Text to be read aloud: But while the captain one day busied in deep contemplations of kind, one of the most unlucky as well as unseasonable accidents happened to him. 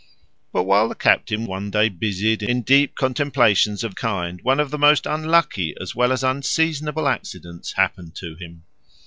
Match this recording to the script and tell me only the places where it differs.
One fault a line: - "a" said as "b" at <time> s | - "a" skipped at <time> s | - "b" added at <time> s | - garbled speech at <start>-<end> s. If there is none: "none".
none